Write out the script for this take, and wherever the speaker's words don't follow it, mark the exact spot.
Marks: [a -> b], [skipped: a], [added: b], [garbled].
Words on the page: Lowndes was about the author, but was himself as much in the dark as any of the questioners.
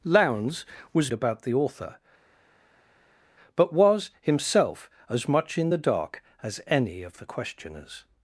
Lowndes was about the author, but was himself as much in the dark as any of the questioners.